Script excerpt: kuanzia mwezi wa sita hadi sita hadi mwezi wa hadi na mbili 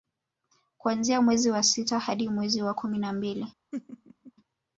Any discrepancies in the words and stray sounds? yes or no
yes